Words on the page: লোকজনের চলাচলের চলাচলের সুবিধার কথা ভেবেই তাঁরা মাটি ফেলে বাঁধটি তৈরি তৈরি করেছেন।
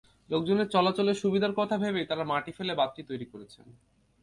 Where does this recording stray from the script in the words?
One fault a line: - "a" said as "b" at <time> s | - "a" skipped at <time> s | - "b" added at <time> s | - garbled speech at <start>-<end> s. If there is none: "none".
- "চলাচলের" skipped at 1.2 s
- "তৈরি" skipped at 3.2 s